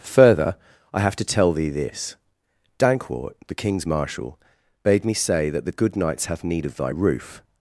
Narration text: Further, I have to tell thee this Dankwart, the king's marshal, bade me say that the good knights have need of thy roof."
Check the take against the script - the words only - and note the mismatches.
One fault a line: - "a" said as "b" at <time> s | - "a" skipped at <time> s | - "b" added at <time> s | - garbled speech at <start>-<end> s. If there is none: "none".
none